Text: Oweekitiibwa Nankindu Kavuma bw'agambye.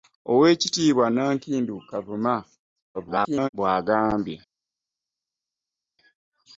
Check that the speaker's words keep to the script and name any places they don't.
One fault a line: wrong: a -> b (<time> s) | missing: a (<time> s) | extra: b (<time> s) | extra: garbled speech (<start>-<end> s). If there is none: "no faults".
extra: garbled speech (2.9-3.5 s)